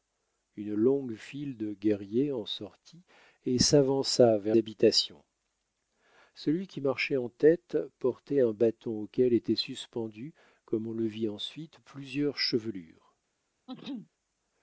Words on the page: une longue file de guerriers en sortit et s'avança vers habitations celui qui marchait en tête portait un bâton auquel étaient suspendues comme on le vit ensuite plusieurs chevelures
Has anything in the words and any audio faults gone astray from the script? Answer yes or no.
yes